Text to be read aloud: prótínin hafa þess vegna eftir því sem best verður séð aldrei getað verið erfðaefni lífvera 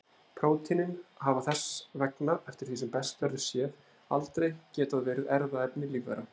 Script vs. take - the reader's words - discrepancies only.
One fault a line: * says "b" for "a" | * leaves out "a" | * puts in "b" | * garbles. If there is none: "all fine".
all fine